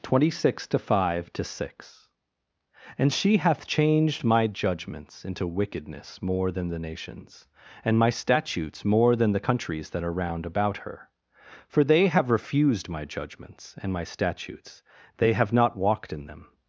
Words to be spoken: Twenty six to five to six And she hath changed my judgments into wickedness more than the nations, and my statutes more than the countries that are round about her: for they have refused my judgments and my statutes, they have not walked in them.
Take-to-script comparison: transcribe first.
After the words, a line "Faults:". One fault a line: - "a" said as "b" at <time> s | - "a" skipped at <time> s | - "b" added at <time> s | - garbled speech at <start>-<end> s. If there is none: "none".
Twenty six to five to six And she hath changed my judgments into wickedness more than the nations, and my statutes more than the countries that are round about her: for they have refused my judgments and my statutes, they have not walked in them.
Faults:
none